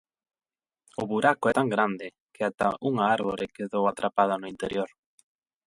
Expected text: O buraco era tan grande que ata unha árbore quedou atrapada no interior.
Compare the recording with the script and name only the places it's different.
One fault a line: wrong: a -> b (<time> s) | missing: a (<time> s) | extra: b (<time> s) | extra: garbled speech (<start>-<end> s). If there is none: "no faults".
missing: era (1.4 s)